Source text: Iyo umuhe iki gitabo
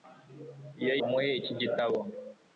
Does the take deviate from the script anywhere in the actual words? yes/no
no